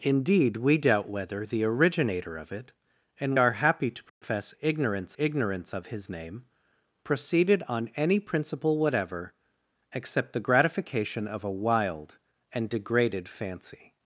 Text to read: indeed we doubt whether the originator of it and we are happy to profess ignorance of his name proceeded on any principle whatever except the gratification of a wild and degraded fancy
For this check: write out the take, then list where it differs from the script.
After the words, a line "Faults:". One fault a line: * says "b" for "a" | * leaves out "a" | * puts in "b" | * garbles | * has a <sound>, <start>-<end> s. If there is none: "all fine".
indeed we doubt whether the originator of it and are happy to profess ignorance ignorance of his name proceeded on any principle whatever except the gratification of a wild and degraded fancy
Faults:
* leaves out "we"
* has a dropout, 4.1-4.2 s
* puts in "ignorance"